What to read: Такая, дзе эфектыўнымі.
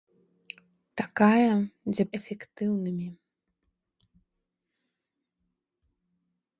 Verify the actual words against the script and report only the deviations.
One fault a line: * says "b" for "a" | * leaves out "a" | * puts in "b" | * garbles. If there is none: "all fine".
all fine